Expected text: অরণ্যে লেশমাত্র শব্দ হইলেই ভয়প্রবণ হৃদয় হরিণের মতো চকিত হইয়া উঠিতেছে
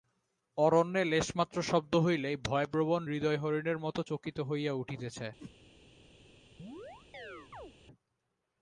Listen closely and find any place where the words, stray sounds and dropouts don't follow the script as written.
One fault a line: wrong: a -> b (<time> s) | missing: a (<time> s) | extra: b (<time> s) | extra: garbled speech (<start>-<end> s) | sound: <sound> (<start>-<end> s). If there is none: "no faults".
sound: whoosh (5.4-5.6 s)
sound: chirp (6.6-7.7 s)